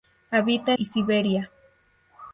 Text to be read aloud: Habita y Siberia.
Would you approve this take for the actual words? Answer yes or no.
yes